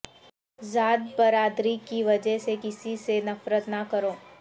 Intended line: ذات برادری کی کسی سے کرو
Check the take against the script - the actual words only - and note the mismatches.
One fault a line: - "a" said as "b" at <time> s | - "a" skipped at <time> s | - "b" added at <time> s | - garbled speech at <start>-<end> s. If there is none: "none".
- "وجہ سے" added at 2.0 s
- "نفرت نہ" added at 3.3 s